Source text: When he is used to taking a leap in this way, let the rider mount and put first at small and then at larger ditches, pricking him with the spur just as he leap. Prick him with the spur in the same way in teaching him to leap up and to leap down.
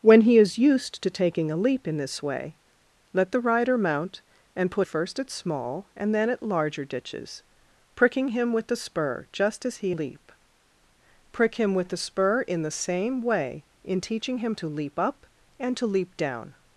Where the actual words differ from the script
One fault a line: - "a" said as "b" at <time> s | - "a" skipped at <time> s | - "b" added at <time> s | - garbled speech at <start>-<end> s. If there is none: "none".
none